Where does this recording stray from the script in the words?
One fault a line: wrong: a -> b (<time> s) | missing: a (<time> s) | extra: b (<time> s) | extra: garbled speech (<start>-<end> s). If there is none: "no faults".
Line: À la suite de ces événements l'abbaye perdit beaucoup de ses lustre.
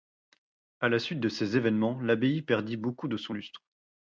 wrong: ses -> son (3.2 s)